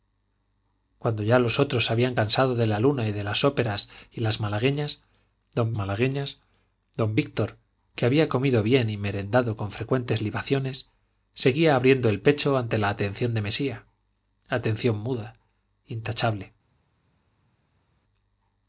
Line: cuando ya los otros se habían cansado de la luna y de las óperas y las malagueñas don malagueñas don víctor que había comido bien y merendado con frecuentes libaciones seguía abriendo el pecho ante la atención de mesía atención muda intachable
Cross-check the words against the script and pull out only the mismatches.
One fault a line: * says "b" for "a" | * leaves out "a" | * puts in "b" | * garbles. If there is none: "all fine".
all fine